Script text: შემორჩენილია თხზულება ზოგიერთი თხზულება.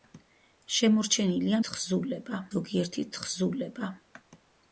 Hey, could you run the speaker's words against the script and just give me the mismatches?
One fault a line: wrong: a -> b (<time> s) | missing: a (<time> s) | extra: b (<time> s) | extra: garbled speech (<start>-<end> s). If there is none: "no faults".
no faults